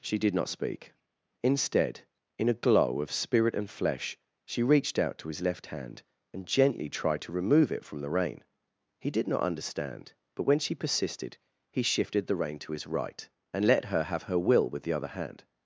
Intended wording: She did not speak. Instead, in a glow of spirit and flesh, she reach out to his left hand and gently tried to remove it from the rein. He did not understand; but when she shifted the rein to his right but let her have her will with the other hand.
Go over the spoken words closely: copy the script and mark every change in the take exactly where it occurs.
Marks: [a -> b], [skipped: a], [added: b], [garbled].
She did not speak. Instead, in a glow of spirit and flesh, she [reach -> reached] out to his left hand and gently tried to remove it from the rein. He did not understand; but when she [added: persisted he] shifted the rein to his right [but -> and] let her have her will with the other hand.